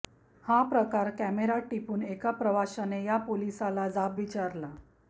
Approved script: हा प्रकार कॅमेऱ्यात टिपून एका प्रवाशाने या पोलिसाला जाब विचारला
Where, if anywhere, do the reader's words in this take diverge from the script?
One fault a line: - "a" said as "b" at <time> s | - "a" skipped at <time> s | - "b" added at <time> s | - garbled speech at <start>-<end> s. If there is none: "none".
none